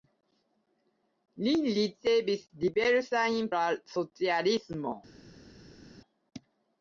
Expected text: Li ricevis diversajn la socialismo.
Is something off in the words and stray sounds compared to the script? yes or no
no